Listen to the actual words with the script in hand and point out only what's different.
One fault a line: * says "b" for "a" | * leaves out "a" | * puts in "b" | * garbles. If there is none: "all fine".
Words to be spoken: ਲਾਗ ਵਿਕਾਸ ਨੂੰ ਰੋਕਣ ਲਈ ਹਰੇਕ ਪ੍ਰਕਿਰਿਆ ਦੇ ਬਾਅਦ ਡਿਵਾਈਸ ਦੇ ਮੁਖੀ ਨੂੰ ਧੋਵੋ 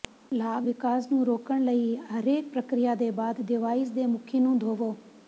all fine